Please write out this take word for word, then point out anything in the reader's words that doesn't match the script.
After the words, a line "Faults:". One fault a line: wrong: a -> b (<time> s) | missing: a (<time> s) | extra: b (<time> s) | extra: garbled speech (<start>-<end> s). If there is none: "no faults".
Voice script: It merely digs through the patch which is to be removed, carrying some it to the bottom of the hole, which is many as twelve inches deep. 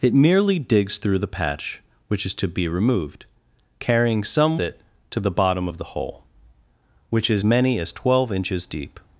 It merely digs through the patch which is to be removed, carrying some it to the bottom of the hole, which is many as twelve inches deep.
Faults:
no faults